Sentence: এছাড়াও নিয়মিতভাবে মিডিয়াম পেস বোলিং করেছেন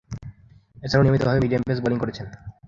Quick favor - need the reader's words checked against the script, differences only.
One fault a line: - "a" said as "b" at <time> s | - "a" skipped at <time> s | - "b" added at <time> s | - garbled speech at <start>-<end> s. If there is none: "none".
none